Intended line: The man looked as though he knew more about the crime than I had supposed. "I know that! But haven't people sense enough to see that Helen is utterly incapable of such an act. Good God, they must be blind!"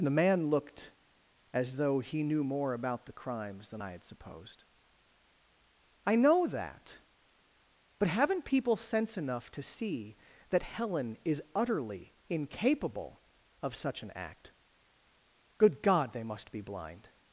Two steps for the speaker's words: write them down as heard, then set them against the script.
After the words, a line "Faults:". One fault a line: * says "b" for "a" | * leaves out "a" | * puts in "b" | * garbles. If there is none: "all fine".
The man looked as though he knew more about the crimes than I had supposed. "I know that! But haven't people sense enough to see that Helen is utterly incapable of such an act. Good God, they must be blind!"
Faults:
* says "crimes" for "crime"